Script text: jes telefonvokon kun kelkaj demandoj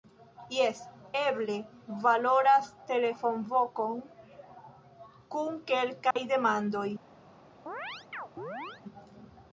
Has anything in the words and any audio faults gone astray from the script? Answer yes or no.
yes